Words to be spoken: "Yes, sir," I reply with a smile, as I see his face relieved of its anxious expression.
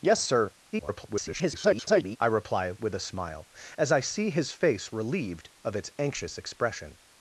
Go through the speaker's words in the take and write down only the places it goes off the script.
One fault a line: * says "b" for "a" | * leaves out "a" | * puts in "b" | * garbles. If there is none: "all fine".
* garbles